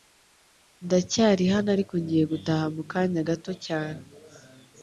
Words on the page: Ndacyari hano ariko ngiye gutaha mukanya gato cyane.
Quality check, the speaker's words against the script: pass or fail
pass